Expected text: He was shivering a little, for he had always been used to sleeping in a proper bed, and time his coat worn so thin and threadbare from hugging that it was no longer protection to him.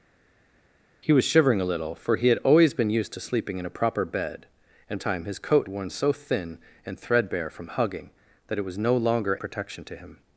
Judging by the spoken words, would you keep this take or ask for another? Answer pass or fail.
pass